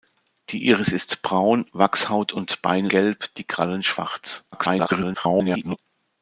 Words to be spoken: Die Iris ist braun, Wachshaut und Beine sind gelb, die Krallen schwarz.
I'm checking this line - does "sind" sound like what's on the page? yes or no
no